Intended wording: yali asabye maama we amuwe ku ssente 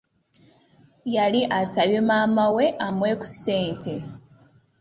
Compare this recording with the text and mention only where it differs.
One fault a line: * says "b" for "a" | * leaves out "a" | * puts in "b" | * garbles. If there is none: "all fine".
all fine